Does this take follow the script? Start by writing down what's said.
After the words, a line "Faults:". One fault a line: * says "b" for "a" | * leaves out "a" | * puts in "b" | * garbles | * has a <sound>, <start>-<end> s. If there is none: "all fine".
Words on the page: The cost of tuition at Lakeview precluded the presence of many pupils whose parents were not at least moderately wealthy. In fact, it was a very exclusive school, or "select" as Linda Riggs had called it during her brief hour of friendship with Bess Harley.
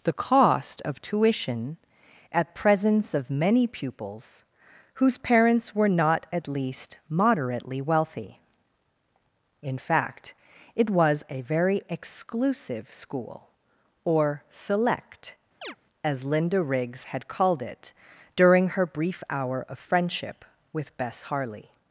The cost of tuition at presence of many pupils whose parents were not at least moderately wealthy. In fact, it was a very exclusive school, or "select" as Linda Riggs had called it during her brief hour of friendship with Bess Harley.
Faults:
* leaves out "Lakeview precluded the"
* has a chirp, 15.6-15.8 s